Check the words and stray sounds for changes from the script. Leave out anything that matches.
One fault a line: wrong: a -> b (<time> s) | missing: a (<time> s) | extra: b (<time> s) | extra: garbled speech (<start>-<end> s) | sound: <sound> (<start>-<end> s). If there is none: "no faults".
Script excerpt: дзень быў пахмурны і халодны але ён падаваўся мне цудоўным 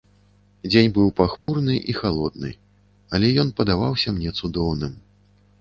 sound: dropout (1.4-1.5 s)